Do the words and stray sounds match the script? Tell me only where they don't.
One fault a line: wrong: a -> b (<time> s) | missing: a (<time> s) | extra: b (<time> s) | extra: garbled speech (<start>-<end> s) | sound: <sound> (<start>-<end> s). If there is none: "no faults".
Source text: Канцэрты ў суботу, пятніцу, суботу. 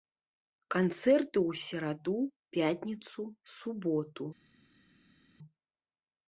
wrong: суботу -> сераду (1.6 s)